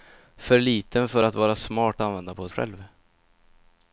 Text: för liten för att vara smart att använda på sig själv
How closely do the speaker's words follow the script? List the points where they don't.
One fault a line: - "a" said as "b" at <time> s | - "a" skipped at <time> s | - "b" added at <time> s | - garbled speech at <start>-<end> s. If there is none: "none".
- "att" skipped at 2.0 s
- "sig" skipped at 2.5 s